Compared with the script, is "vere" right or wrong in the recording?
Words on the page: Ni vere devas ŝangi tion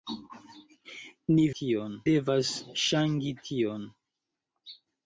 wrong